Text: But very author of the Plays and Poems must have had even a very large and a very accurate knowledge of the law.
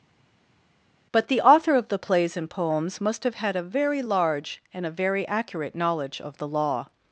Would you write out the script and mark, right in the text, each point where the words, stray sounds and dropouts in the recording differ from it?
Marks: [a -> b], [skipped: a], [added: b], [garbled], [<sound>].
But [very -> the] author of the Plays and Poems must have had [skipped: even] a very large and a very accurate knowledge of the law.